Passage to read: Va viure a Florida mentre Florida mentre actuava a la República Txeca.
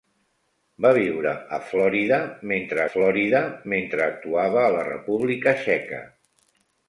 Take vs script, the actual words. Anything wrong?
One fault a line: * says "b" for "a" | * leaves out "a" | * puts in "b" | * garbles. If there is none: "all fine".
all fine